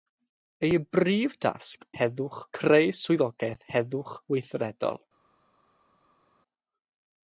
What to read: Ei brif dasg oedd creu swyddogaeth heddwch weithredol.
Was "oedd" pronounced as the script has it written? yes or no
no